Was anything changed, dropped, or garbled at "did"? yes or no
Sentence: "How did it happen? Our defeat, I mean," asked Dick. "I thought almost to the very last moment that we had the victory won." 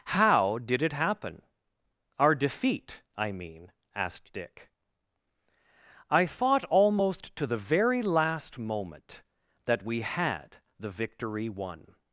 no